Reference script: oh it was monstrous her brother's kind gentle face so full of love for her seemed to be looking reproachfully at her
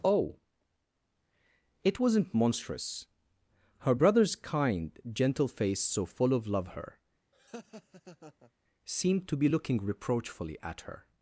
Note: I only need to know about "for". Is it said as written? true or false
false